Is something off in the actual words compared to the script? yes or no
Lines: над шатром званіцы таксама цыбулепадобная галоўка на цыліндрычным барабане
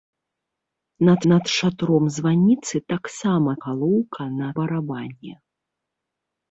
yes